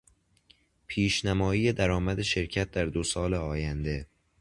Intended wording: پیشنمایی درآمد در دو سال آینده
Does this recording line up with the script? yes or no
no